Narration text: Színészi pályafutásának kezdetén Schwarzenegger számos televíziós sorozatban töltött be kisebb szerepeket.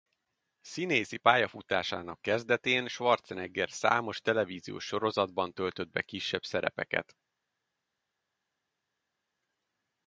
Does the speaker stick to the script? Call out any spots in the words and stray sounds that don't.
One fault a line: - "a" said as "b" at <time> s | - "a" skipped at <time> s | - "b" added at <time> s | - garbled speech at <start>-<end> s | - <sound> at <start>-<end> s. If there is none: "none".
none